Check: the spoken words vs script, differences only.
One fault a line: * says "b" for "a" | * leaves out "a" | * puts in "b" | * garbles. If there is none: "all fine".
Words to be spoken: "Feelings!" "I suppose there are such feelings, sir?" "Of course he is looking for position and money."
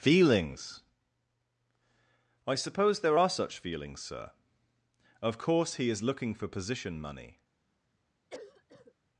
* leaves out "and"